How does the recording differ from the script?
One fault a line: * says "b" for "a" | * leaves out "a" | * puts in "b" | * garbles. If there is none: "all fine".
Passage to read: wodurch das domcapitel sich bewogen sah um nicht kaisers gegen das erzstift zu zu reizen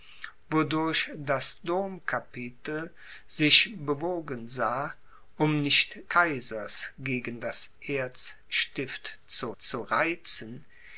all fine